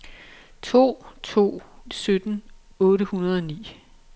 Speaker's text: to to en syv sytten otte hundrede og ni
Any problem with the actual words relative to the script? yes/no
yes